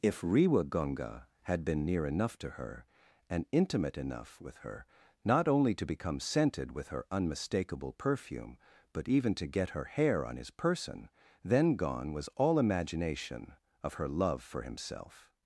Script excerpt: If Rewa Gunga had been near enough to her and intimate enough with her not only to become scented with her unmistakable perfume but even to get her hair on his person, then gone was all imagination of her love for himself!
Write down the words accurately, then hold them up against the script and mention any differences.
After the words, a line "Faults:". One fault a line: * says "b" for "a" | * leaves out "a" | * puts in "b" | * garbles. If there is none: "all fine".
If Rewa Gunga had been near enough to her and intimate enough with her not only to become scented with her unmistakable perfume but even to get her hair on his person, then gone was all imagination of her love for himself!
Faults:
all fine